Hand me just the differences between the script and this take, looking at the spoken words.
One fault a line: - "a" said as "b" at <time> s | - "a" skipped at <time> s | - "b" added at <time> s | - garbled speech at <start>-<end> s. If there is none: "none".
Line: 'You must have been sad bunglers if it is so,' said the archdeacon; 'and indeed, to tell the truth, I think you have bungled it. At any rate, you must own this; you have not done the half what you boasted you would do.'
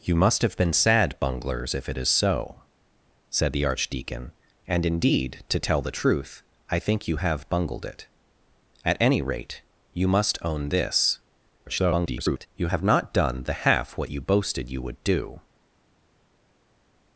- garbled speech at 11.7-12.5 s